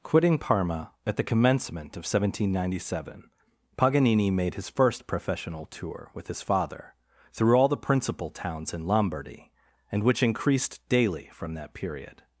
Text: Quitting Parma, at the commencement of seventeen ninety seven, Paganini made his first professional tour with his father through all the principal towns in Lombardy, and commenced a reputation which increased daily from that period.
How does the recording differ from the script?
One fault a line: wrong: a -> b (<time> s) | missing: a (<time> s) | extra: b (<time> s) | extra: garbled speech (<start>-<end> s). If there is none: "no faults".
missing: commenced a reputation (10.0 s)